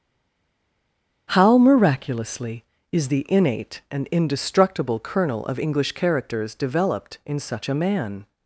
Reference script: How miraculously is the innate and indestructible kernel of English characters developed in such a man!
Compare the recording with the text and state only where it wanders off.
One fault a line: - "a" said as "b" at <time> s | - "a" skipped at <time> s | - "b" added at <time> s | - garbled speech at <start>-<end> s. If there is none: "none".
none